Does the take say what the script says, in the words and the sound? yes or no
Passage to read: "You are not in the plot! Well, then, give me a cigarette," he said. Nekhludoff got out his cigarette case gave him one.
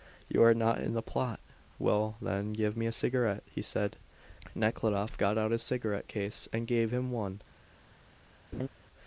no